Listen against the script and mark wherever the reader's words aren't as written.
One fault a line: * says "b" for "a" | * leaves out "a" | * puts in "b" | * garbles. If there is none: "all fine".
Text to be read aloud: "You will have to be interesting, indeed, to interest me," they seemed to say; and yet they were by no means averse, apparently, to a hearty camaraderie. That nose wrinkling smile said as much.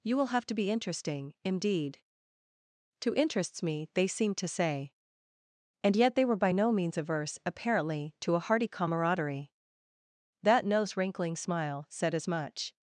* says "interests" for "interest"